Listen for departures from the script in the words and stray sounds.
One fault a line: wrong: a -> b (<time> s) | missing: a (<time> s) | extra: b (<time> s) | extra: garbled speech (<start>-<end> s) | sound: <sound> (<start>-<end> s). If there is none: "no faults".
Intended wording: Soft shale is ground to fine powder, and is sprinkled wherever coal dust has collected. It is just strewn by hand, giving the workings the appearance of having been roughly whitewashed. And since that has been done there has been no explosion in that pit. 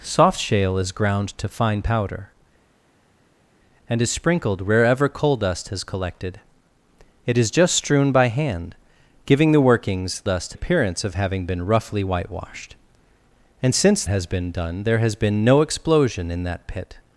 wrong: the -> dust (10.2 s)
missing: that (14.0 s)